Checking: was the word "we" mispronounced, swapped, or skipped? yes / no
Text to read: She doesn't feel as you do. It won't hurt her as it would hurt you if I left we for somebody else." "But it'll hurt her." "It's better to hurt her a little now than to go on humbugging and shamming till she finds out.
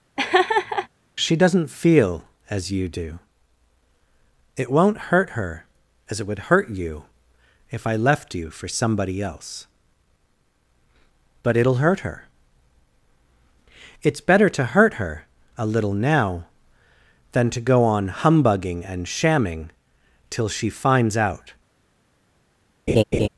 yes